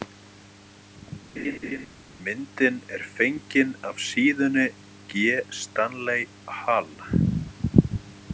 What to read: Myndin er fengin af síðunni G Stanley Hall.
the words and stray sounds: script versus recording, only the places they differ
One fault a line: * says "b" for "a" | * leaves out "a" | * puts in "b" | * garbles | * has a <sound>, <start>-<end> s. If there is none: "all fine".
* has a laugh, 1.4-1.9 s